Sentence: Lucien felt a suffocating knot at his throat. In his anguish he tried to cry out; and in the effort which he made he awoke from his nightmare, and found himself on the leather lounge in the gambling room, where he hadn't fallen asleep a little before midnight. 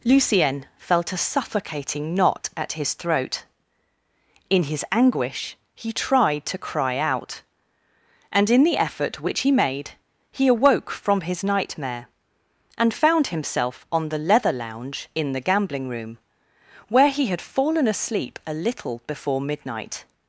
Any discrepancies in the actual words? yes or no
yes